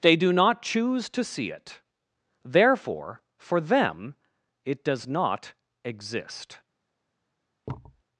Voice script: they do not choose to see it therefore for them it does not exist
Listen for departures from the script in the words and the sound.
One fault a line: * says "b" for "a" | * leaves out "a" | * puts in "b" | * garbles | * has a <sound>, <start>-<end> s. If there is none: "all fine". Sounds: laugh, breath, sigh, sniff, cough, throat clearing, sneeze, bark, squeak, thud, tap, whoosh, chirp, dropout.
* has a thud, 7.7-8.0 s